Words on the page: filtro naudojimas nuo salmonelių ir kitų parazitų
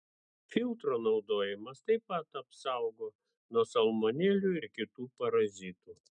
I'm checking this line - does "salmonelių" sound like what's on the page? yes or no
yes